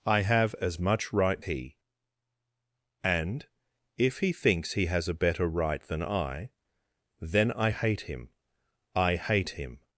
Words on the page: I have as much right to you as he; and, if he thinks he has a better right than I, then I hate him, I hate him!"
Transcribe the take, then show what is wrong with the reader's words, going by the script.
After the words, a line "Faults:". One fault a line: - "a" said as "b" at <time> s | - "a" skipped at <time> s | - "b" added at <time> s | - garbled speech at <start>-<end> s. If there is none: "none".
I have as much right he; and, if he thinks he has a better right than I, then I hate him, I hate him!"
Faults:
- "to you as" skipped at 1.4 s